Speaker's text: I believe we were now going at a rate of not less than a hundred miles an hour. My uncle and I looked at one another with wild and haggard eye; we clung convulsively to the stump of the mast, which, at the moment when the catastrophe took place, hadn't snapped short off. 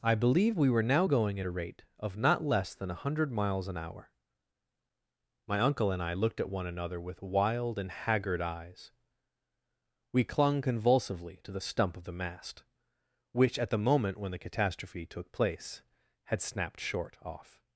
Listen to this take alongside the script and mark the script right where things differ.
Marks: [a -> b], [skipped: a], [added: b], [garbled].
I believe we were now going at a rate of not less than a hundred miles an hour. My uncle and I looked at one another with wild and haggard [eye; -> eyes] we clung convulsively to the stump of the mast, which, at the moment when the catastrophe took place, [hadn't -> had] snapped short off.